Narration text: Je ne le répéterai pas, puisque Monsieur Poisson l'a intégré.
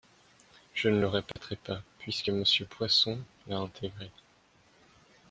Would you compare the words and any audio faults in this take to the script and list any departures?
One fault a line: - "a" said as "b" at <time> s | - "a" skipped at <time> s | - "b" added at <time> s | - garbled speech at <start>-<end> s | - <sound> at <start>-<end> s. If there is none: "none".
- dropout at 1.3-1.4 s